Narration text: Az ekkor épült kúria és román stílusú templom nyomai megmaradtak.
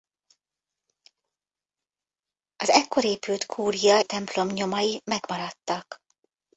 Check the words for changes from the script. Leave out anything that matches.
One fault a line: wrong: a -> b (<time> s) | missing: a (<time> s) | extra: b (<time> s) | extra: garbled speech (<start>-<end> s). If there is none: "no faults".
missing: és román stílusú (4.0 s)